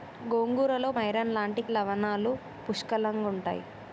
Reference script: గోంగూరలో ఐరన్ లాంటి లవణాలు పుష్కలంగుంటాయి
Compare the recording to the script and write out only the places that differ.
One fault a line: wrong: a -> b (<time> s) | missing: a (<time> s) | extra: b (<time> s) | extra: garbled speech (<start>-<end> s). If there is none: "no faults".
no faults